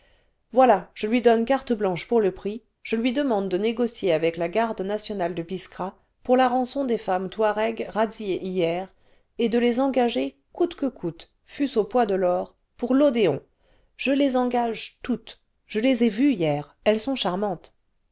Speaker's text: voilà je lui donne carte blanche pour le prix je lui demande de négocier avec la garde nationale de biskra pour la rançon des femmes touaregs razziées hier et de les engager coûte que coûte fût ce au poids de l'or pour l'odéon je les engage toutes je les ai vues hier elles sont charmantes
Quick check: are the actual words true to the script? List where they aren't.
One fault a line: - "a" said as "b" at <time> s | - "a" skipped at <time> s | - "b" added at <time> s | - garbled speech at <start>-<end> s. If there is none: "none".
none